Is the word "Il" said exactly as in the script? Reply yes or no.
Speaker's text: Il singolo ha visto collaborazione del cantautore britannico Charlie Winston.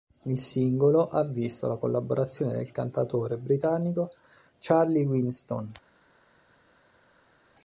yes